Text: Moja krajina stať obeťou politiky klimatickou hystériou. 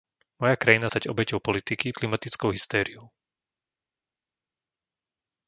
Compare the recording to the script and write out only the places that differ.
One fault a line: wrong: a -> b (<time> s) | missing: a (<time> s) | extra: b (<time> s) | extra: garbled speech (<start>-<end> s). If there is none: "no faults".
no faults